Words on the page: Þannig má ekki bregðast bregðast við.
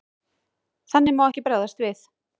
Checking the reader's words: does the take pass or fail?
fail